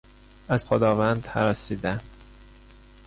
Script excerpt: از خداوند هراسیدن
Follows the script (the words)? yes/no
yes